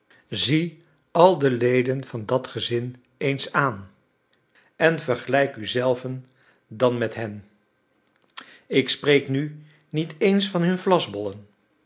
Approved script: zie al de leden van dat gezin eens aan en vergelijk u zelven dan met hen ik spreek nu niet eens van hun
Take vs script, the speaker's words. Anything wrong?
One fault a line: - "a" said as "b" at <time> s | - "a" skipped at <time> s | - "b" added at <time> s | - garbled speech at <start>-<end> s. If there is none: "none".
none